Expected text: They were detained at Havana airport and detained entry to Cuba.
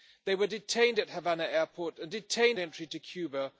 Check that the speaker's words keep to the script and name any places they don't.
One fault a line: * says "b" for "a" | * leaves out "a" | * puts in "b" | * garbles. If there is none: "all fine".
all fine